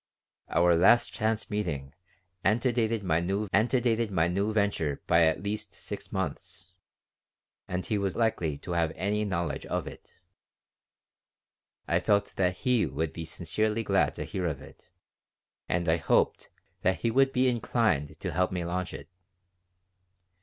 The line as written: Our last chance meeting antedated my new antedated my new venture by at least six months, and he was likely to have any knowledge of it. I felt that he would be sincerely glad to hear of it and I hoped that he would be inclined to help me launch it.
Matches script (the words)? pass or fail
pass